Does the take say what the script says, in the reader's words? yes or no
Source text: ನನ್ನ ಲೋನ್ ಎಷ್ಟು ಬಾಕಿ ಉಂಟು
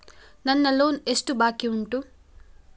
yes